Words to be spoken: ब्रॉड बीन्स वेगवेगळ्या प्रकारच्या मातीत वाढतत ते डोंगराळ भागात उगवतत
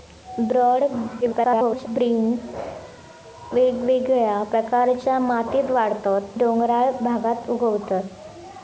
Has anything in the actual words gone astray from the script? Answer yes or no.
yes